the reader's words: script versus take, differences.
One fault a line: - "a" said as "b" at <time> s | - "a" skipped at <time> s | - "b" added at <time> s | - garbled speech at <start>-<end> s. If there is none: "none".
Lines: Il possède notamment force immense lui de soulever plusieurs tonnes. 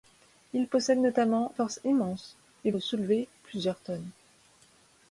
none